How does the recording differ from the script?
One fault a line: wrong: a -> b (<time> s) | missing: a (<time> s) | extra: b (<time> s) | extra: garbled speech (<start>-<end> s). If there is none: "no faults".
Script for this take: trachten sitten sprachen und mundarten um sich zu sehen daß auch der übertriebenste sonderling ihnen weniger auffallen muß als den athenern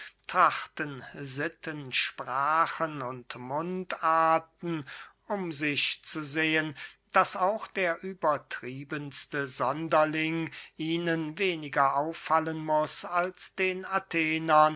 no faults